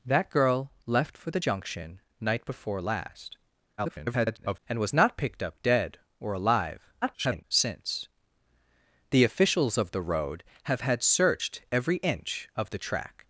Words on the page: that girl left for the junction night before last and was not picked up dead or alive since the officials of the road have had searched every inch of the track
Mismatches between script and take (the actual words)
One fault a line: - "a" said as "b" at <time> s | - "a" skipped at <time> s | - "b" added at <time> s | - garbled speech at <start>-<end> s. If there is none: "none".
- garbled speech at 3.8-4.6 s
- garbled speech at 7.0-7.4 s